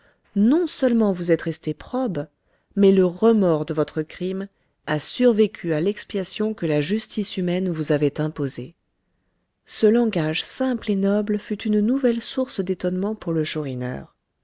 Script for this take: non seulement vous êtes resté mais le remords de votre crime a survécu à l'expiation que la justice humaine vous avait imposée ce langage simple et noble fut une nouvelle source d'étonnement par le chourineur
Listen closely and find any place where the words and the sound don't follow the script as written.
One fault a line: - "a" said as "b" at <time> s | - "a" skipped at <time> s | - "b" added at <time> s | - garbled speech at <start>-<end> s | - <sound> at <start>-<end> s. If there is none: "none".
- "probe" added at 1.7 s
- "par" said as "pour" at 13.1 s